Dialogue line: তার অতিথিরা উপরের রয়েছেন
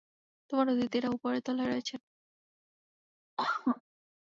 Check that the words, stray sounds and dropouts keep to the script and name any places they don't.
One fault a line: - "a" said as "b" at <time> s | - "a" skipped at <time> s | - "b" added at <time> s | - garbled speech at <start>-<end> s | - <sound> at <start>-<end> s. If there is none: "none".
- "তার" said as "তোমার" at 0.5 s
- "তলায়" added at 1.5 s
- cough at 3.4-3.8 s